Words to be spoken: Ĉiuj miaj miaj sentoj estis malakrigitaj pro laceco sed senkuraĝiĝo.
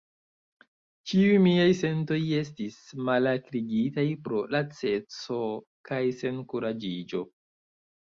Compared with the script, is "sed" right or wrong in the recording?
wrong